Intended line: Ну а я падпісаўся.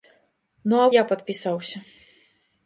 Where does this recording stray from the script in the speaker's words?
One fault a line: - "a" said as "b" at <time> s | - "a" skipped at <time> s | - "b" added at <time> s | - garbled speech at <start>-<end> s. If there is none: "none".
none